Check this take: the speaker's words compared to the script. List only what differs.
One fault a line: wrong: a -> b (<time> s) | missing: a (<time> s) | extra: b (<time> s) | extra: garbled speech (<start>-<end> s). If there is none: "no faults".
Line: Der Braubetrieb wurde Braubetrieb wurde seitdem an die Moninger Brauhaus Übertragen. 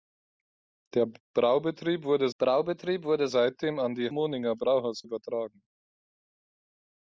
no faults